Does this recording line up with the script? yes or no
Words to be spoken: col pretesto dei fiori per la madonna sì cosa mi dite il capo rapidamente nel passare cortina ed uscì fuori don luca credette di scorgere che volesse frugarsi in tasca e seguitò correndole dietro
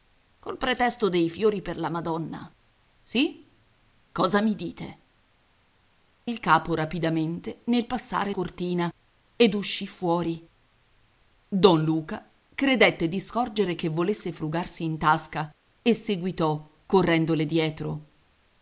yes